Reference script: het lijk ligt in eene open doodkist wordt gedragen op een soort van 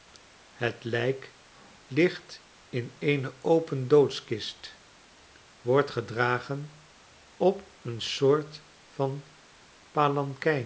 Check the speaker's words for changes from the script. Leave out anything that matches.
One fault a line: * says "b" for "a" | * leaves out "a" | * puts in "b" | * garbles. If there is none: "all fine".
all fine